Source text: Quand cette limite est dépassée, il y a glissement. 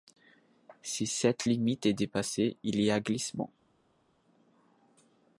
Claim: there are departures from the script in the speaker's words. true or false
true